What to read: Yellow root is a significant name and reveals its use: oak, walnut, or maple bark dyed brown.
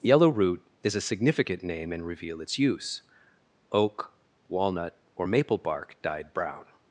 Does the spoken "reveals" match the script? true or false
false